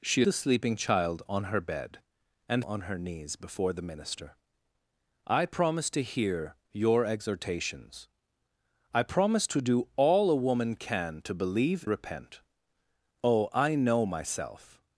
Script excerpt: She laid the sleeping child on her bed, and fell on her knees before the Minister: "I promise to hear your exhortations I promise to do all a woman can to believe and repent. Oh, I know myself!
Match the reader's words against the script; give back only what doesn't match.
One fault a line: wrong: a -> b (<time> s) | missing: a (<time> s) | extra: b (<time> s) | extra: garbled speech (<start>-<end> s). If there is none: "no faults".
missing: laid (0.2 s)
missing: fell (2.6 s)
missing: and (11.9 s)